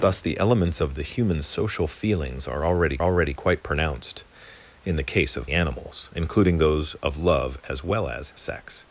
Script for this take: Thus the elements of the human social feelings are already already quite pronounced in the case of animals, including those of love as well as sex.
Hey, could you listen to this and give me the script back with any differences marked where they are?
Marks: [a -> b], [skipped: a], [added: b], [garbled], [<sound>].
Thus the elements of the human social feelings are already already quite pronounced in the case of animals, including those of love as well as sex.